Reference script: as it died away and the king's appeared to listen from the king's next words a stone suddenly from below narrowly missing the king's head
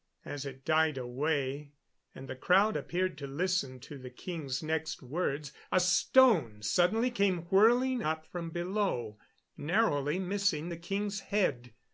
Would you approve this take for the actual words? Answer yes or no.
no